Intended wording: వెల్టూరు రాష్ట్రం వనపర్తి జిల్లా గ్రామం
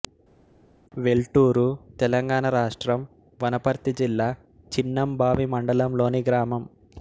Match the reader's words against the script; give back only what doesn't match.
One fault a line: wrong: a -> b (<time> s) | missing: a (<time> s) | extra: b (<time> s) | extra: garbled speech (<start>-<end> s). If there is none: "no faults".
extra: తెలంగాణ (2.0 s)
extra: చిన్నంబావి మండలంలోని (4.7 s)